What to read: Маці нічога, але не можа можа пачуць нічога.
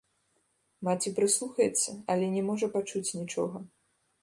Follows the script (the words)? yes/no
no